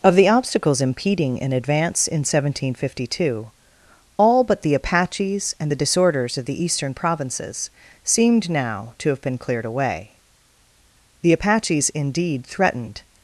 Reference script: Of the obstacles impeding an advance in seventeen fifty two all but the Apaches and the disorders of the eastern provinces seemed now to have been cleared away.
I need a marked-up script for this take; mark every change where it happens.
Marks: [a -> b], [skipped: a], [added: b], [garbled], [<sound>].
Of the obstacles impeding an advance in seventeen fifty two all but the Apaches and the disorders of the eastern provinces seemed now to have been cleared away. [added: The Apaches indeed threatened]